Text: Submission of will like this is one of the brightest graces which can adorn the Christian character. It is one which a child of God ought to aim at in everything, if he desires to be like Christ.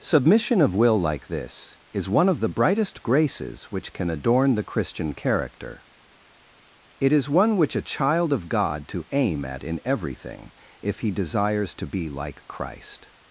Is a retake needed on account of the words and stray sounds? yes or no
yes